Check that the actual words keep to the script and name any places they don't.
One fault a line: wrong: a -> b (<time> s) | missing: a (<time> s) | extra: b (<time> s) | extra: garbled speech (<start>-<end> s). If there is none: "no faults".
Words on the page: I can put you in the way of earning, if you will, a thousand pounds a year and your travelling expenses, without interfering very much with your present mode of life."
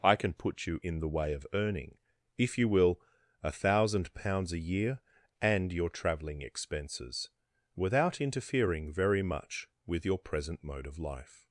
no faults